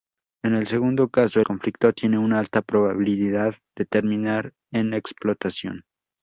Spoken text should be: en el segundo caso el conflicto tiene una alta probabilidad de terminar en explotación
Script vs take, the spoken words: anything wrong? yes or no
yes